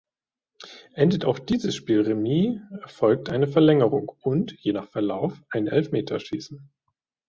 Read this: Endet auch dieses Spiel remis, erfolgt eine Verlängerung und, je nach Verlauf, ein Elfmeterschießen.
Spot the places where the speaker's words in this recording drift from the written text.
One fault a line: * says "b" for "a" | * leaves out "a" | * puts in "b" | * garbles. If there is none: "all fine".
all fine